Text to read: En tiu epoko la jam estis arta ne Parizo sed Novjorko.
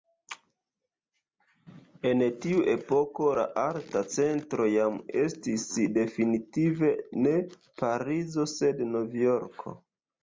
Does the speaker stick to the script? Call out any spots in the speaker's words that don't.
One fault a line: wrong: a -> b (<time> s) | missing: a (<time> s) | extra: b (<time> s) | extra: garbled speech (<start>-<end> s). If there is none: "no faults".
extra: arta centro (3.6 s)
wrong: arta -> definitive (6.0 s)